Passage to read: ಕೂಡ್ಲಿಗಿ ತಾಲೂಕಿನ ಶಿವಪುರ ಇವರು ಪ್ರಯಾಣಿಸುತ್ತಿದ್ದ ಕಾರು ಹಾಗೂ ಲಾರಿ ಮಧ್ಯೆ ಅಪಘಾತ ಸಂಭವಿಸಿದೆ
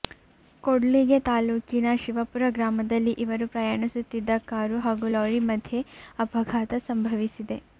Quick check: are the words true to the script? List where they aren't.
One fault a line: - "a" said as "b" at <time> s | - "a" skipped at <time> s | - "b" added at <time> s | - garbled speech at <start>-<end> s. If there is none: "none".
- "ಗ್ರಾಮದಲ್ಲಿ" added at 2.5 s